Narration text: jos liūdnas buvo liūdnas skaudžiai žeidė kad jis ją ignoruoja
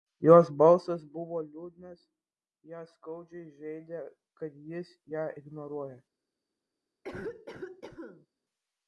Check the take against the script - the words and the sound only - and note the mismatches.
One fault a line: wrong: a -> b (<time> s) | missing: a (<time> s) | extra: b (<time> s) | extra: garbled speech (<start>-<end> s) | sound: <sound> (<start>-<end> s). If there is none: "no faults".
wrong: liūdnas -> balsas (0.6 s)
extra: ją (2.7 s)
sound: cough (7.0-8.3 s)